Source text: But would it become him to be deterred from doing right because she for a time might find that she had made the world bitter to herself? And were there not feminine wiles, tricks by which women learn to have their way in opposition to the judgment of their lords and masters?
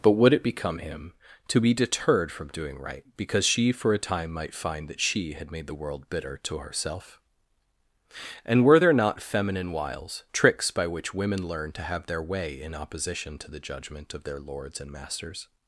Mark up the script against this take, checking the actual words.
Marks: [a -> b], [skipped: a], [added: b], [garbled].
But would it become him to be deterred from doing right because she for a time might find that she had made the world bitter to herself? And were there not feminine wiles, tricks by which women learn to have their way in opposition to the judgment of their lords and masters?